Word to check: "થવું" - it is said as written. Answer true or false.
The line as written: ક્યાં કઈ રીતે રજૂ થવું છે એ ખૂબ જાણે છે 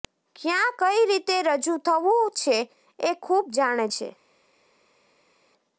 true